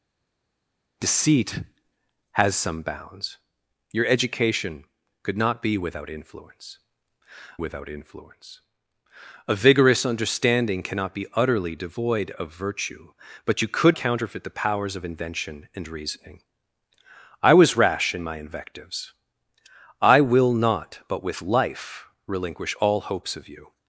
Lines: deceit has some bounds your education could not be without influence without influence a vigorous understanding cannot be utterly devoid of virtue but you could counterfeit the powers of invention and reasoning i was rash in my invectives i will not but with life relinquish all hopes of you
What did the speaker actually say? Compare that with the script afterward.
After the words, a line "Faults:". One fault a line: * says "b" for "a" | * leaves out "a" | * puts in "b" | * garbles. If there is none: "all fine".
deceit has some bounds your education could not be without influence without influence a vigorous understanding cannot be utterly devoid of virtue but you could counterfeit the powers of invention and reasoning i was rash in my invectives i will not but with life relinquish all hopes of you
Faults:
all fine